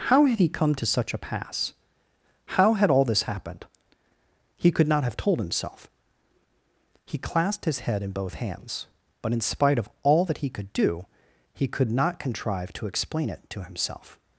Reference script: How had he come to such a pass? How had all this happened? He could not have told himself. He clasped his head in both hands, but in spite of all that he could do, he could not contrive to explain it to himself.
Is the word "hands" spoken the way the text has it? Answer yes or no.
yes